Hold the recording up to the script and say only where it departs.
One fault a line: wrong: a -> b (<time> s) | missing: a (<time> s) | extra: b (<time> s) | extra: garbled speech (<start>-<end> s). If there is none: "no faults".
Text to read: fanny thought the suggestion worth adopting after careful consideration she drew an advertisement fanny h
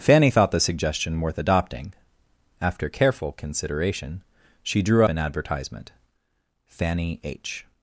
no faults